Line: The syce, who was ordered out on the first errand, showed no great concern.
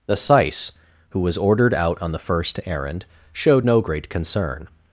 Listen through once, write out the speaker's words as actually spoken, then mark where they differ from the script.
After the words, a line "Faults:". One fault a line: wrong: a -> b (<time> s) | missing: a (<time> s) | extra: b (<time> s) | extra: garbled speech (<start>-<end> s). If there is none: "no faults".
The syce, who was ordered out on the first errand, showed no great concern.
Faults:
no faults